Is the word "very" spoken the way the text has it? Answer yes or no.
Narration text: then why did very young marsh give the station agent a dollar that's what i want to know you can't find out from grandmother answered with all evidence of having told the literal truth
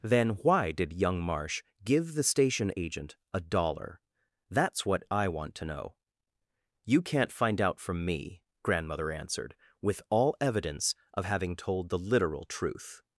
no